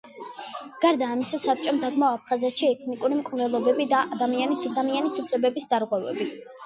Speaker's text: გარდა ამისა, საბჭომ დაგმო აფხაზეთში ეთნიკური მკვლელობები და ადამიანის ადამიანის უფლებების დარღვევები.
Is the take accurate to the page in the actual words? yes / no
yes